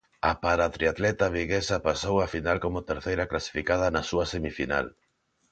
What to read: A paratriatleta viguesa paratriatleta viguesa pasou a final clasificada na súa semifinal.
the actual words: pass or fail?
fail